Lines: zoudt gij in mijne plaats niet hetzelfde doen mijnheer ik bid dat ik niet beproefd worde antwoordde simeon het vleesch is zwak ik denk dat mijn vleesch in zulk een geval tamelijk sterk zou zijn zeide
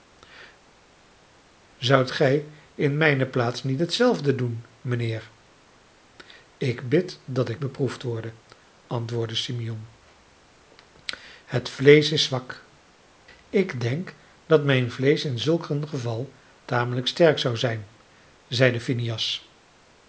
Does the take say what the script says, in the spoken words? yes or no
no